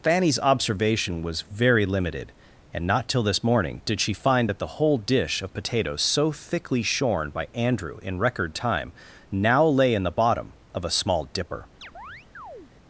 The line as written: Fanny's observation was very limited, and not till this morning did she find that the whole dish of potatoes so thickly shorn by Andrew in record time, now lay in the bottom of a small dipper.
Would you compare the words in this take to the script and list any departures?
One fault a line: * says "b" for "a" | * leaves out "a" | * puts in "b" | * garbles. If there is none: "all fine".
all fine